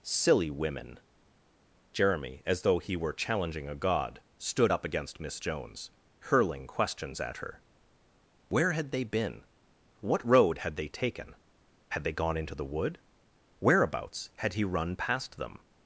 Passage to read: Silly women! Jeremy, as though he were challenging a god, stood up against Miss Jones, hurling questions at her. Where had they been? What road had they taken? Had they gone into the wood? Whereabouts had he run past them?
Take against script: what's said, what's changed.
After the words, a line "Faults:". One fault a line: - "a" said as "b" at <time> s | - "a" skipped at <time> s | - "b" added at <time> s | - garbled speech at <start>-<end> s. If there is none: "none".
Silly women! Jeremy, as though he were challenging a god, stood up against Miss Jones, hurling questions at her. Where had they been? What road had they taken? Had they gone into the wood? Whereabouts had he run past them?
Faults:
none